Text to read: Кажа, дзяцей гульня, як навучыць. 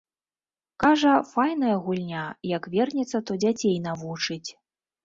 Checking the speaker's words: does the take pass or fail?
fail